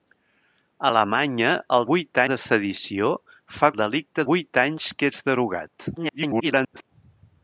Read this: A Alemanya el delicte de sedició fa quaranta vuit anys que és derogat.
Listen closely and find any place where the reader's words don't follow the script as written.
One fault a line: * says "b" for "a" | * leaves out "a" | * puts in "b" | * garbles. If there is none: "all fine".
* says "vuit" for "delicte"
* says "delicte" for "quaranta"
* garbles